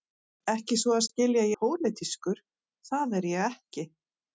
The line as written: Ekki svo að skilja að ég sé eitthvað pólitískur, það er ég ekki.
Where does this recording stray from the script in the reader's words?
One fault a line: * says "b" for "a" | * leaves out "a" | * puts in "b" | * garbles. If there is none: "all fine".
* leaves out "ég sé eitthvað"